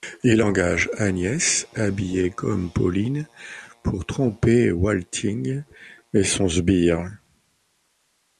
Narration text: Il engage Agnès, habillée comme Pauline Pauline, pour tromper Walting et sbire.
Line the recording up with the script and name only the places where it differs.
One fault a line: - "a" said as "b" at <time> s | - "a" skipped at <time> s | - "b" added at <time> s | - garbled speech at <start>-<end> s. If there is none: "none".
- "Pauline" skipped at 3.3 s
- "son" added at 6.2 s